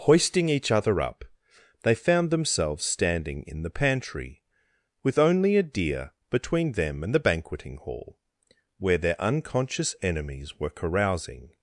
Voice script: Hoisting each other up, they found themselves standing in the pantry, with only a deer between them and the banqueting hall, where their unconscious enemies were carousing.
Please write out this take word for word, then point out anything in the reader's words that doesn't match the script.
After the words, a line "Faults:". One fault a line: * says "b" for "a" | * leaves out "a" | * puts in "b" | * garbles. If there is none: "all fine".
Hoisting each other up, they found themselves standing in the pantry, with only a deer between them and the banqueting hall, where their unconscious enemies were carousing.
Faults:
all fine